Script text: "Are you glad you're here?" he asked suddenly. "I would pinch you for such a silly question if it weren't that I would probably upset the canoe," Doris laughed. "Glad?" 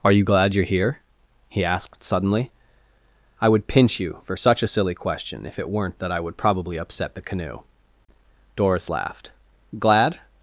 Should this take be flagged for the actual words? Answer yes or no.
no